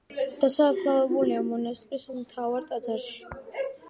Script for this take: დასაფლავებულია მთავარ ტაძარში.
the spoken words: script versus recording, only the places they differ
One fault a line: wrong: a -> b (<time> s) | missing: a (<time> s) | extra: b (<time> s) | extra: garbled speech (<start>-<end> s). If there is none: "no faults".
extra: მონასტრის (1.5 s)